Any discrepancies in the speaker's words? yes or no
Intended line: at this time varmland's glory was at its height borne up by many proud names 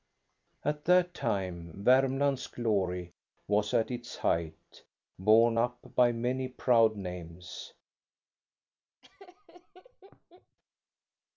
yes